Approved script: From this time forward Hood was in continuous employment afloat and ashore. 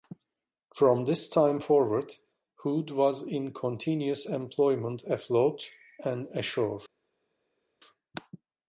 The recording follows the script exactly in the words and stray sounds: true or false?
true